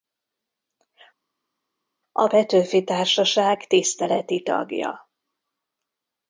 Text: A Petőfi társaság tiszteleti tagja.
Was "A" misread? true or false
false